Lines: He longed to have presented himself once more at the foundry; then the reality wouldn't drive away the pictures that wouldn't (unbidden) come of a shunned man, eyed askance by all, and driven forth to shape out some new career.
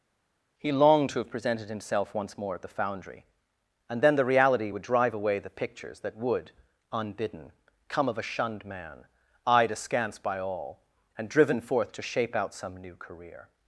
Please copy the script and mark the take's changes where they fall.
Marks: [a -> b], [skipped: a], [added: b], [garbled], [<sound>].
He longed to have presented himself once more at the foundry; [added: and] then the reality [wouldn't -> would] drive away the pictures that [wouldn't -> would] (unbidden) come of a shunned man, eyed askance by all, and driven forth to shape out some new career.